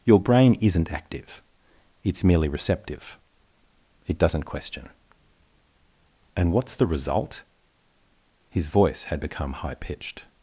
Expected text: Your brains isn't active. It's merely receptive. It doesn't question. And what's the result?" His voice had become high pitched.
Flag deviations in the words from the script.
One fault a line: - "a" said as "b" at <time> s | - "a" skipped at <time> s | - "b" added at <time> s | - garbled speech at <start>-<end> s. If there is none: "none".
- "brains" said as "brain" at 0.2 s